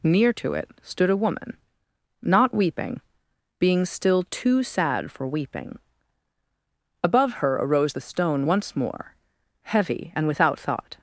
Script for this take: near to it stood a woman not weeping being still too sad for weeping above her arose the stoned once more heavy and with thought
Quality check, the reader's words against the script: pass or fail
fail